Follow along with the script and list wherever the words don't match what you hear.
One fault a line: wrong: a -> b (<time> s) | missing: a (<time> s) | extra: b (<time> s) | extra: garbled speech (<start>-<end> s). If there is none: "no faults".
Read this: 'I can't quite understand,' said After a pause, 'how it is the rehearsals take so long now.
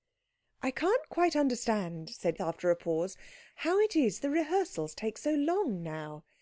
no faults